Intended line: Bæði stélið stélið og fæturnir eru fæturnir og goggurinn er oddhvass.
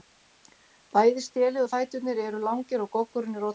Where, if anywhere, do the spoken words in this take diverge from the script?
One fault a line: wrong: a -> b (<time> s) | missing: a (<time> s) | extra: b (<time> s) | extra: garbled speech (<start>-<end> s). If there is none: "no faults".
missing: stélið (1.6 s)
wrong: fæturnir -> langir (2.5 s)